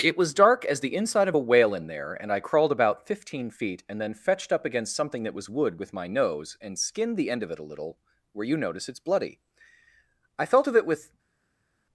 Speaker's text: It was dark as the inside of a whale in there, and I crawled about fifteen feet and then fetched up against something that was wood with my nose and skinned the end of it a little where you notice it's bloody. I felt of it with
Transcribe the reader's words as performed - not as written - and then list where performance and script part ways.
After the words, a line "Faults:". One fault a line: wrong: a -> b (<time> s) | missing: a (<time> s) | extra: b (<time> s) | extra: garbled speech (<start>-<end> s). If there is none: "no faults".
It was dark as the inside of a whale in there, and I crawled about fifteen feet and then fetched up against something that was wood with my nose and skinned the end of it a little where you notice it's bloody. I felt of it with
Faults:
no faults